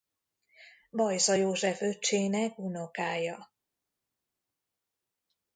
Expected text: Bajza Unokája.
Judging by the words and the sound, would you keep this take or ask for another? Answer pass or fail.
fail